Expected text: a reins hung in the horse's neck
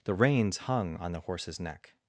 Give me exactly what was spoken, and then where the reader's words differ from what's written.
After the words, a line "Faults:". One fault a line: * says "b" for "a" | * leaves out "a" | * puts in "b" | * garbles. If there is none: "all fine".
the reins hung on the horse's neck
Faults:
* says "the" for "a"
* says "on" for "in"